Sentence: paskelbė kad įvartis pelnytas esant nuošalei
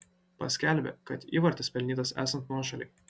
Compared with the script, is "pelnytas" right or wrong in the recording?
right